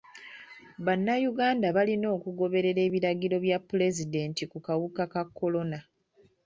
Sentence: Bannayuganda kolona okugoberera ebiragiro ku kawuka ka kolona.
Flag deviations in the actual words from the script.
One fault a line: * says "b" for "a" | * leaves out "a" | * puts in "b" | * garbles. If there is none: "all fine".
* says "balina" for "kolona"
* puts in "bya pulezidenti"